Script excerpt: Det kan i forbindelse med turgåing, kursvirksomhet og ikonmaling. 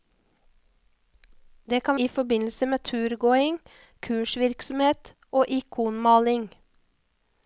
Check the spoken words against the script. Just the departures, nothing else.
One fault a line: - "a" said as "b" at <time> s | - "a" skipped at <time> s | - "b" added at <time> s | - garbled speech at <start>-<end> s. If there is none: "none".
none